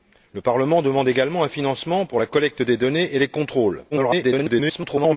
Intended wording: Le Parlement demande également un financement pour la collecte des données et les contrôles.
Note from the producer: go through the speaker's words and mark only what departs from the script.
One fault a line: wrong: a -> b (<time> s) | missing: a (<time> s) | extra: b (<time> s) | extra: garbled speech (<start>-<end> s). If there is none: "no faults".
extra: garbled speech (3.9-5.2 s)